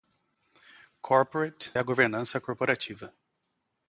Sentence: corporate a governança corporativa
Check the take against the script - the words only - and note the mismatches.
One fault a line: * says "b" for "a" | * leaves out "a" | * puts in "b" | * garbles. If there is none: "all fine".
all fine